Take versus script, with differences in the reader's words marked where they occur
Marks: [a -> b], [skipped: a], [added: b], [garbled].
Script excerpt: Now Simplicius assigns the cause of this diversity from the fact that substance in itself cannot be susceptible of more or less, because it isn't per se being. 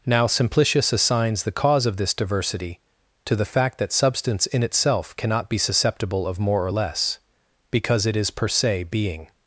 Now Simplicius assigns the cause of this diversity [from -> to] the fact that substance in itself cannot be susceptible of more or less, because it [isn't -> is] per se being.